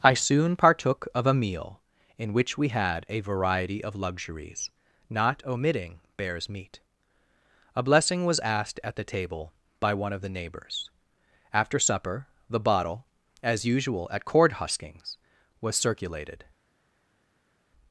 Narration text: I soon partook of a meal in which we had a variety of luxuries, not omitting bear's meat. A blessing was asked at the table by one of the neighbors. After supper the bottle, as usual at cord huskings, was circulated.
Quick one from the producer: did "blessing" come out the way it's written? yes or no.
yes